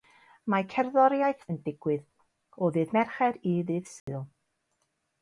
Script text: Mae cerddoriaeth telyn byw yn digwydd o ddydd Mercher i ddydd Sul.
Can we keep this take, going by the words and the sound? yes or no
no